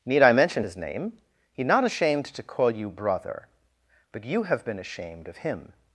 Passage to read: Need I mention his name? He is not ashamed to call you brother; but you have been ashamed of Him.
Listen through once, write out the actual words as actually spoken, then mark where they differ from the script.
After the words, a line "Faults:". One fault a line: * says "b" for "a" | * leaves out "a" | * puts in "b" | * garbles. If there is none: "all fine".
Need I mention his name? He not ashamed to call you brother; but you have been ashamed of Him.
Faults:
* leaves out "is"